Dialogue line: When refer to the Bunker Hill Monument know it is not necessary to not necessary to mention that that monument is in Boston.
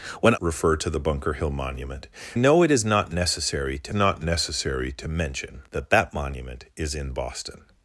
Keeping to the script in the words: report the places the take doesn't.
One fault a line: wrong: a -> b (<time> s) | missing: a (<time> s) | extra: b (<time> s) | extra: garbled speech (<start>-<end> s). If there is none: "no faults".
no faults